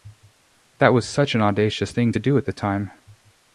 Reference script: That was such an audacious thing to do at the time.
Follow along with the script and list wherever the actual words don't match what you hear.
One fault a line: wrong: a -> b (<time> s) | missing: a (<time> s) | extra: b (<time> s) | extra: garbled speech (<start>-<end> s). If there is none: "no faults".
no faults